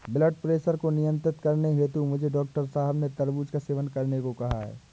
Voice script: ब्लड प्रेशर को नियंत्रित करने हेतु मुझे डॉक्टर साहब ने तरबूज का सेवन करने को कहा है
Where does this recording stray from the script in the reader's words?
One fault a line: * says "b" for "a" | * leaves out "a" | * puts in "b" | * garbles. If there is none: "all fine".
all fine